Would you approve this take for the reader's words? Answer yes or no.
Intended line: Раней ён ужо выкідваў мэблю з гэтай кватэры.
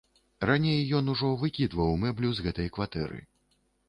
yes